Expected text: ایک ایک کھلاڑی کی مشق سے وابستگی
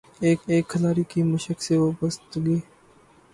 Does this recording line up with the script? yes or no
yes